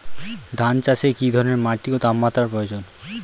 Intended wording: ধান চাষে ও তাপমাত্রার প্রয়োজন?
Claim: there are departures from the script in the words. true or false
true